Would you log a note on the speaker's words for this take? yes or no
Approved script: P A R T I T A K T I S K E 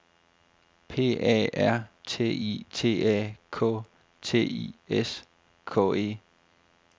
no